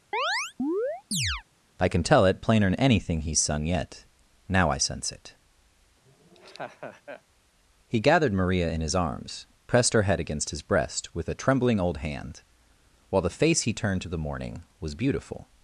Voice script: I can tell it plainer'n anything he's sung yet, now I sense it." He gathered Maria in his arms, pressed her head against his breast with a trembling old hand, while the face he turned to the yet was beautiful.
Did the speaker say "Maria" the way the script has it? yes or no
yes